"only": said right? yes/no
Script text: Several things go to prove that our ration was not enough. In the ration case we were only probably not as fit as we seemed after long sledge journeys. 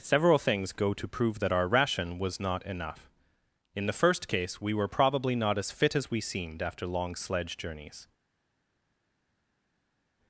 no